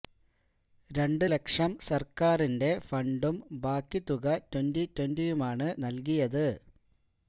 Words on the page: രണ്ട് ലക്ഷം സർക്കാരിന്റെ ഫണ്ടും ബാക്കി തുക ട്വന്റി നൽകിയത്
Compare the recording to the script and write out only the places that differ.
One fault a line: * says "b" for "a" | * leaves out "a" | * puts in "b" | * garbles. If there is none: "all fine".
* puts in "ട്വന്റിയുമാണ്"